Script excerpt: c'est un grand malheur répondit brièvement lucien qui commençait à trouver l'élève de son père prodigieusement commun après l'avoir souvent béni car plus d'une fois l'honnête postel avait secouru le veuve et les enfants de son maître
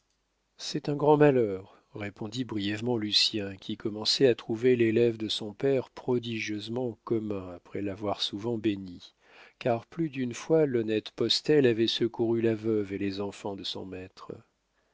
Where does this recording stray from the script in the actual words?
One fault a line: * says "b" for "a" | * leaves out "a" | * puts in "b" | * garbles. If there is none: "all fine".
* says "la" for "le"